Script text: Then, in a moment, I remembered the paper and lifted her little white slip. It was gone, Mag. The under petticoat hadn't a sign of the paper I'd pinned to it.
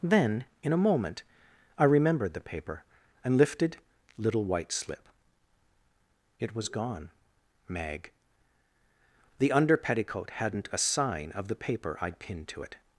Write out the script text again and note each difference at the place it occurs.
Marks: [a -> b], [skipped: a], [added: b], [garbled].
Then, in a moment, I remembered the paper and lifted [skipped: her] little white slip. It was gone, Mag. The under petticoat hadn't a sign of the paper I'd pinned to it.